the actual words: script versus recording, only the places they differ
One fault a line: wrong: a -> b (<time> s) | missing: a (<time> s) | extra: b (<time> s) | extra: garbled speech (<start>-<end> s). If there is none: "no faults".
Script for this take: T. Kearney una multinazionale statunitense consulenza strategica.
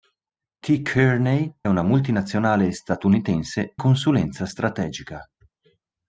no faults